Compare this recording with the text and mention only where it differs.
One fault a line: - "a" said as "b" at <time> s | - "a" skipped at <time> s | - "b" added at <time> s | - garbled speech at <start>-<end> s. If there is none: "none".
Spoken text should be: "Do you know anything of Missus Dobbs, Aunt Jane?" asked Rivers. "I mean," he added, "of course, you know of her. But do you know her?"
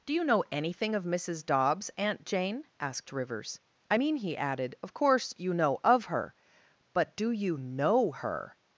none